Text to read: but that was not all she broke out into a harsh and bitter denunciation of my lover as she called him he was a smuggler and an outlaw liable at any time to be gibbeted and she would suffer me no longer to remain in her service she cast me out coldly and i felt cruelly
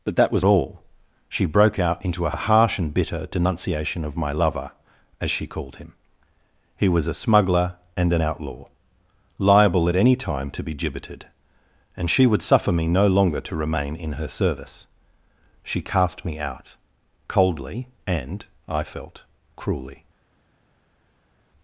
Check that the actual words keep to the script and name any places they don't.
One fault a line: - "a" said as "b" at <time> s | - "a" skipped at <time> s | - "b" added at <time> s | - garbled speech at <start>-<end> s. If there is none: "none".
- "not" skipped at 0.5 s
- "a" added at 2.3 s